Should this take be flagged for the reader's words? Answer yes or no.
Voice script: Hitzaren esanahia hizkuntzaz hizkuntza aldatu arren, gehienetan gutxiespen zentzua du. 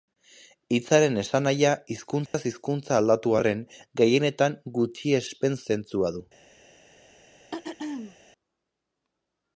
no